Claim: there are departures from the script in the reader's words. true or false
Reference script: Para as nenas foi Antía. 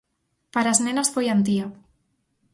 false